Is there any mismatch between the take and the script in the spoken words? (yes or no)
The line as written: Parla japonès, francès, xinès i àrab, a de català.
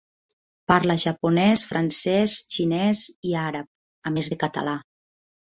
yes